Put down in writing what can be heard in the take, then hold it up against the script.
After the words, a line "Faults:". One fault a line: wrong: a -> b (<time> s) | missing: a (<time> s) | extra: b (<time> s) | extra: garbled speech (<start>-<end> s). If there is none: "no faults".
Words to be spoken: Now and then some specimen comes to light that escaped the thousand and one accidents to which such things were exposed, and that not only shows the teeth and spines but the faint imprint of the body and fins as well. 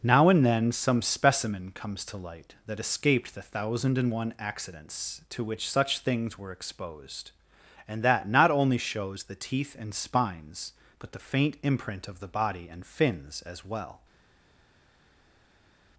Now and then some specimen comes to light that escaped the thousand and one accidents to which such things were exposed, and that not only shows the teeth and spines but the faint imprint of the body and fins as well.
Faults:
no faults